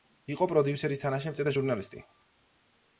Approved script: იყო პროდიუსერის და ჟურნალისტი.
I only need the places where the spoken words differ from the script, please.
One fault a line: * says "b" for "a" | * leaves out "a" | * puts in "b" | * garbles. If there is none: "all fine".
* puts in "თანაშემწე"